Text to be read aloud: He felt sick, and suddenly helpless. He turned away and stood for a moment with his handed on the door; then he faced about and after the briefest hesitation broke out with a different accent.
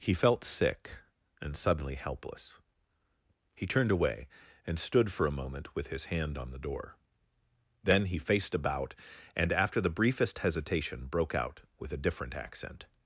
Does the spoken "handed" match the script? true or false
false